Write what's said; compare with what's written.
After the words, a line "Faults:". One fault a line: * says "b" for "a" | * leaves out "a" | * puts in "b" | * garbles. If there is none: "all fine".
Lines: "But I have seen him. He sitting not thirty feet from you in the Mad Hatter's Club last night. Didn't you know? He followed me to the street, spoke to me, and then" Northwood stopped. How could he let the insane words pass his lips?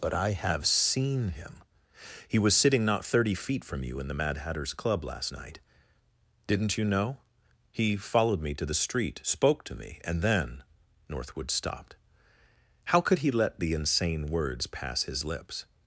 "But I have seen him. He was sitting not thirty feet from you in the Mad Hatter's Club last night. Didn't you know? He followed me to the street, spoke to me, and then" Northwood stopped. How could he let the insane words pass his lips?
Faults:
* puts in "was"